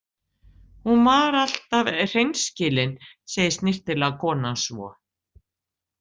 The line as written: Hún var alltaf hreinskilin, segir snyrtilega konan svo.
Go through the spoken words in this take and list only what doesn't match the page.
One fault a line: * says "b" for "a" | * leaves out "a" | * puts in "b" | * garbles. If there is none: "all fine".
all fine